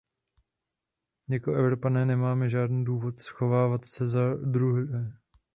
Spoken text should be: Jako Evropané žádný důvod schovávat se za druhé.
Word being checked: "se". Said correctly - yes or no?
yes